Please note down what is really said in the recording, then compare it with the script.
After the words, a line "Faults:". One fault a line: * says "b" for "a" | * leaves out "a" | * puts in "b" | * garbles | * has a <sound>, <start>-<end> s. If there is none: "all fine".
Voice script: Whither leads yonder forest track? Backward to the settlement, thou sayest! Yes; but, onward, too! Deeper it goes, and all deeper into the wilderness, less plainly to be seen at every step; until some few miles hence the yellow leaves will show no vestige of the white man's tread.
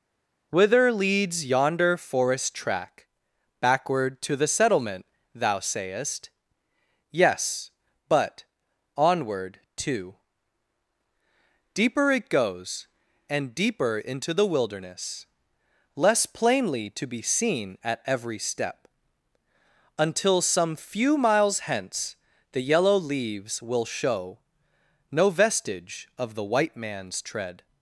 Whither leads yonder forest track? Backward to the settlement, thou sayest! Yes; but, onward, too! Deeper it goes, and deeper into the wilderness, less plainly to be seen at every step; until some few miles hence the yellow leaves will show no vestige of the white man's tread.
Faults:
* leaves out "all"